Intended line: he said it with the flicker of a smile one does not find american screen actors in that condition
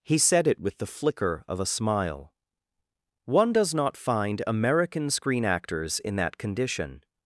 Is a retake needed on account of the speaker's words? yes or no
no